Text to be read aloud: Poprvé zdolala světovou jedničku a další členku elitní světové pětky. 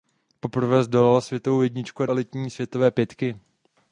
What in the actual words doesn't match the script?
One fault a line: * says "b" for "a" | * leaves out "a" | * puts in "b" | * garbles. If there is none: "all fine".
* leaves out "další členku"